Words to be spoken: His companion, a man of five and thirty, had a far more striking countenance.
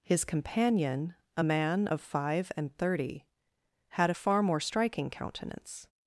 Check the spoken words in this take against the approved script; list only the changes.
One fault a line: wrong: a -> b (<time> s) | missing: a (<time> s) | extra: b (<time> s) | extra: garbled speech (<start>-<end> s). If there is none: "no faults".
no faults